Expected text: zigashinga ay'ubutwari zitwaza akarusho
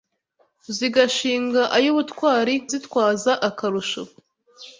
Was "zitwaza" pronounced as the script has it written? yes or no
yes